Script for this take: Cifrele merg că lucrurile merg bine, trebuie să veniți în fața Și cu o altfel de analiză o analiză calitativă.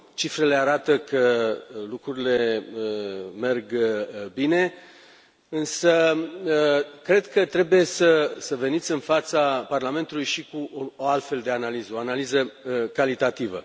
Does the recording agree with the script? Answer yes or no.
no